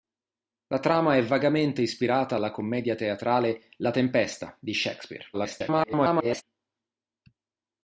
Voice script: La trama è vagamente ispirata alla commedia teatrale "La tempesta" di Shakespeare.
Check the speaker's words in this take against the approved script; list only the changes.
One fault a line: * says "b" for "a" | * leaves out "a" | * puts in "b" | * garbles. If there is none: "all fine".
* garbles